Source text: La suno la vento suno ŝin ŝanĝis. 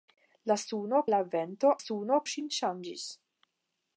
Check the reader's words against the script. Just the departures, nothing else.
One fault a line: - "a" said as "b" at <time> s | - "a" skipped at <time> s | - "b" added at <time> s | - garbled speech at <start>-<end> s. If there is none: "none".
none